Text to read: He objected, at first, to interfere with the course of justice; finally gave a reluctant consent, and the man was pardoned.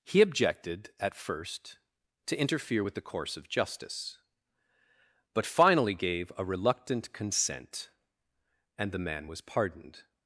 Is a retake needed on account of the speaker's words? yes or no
yes